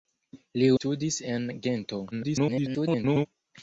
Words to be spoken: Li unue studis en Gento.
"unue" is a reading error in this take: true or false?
true